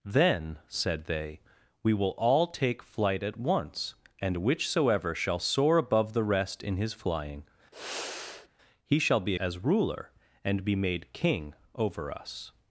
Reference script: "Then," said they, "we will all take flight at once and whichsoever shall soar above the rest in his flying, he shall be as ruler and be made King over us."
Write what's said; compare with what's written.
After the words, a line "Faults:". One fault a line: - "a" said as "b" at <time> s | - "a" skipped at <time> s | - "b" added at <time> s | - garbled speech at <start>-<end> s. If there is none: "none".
"Then," said they, "we will all take flight at once and whichsoever shall soar above the rest in his flying, he shall be as ruler and be made King over us."
Faults:
none